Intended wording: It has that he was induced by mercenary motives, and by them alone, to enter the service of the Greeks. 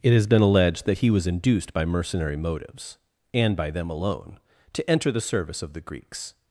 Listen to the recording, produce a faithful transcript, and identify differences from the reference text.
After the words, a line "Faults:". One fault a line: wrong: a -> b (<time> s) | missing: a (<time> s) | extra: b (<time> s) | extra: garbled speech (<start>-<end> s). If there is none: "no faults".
It has been alleged that he was induced by mercenary motives, and by them alone, to enter the service of the Greeks.
Faults:
extra: been alleged (0.2 s)